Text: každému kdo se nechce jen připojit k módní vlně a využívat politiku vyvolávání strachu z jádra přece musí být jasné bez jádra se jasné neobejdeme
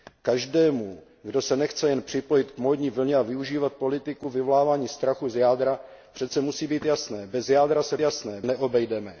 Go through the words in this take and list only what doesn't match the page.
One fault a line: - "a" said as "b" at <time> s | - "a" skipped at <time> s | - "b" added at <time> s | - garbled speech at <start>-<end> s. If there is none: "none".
none